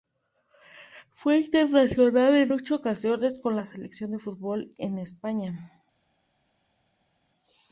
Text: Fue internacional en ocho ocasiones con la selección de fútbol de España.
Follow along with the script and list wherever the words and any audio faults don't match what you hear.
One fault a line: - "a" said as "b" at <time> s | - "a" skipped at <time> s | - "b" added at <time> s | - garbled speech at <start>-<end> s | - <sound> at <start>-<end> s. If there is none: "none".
none